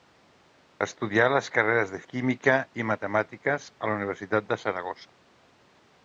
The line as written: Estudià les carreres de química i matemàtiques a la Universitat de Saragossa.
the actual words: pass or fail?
pass